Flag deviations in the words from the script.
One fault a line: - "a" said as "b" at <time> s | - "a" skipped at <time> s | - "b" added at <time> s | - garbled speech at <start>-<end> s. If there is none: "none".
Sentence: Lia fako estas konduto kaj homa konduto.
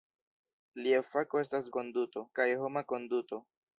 none